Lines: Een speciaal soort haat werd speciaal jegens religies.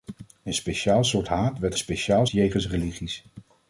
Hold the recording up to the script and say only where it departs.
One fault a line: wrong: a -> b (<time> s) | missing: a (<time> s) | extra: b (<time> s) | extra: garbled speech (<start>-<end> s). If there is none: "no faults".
no faults